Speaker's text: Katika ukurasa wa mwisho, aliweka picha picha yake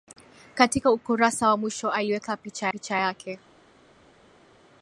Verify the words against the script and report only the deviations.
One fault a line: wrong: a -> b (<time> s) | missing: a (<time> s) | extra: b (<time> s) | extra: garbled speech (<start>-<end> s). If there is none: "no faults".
no faults